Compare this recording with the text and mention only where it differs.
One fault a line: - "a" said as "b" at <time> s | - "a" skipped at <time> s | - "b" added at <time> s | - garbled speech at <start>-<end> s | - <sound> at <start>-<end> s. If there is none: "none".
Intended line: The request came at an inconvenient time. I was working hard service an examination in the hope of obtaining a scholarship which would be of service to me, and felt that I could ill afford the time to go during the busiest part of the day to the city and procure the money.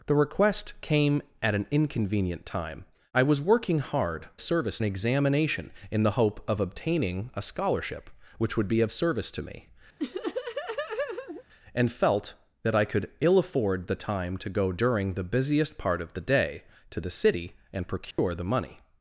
- laugh at 10.0-11.4 s
- dropout at 18.1-18.2 s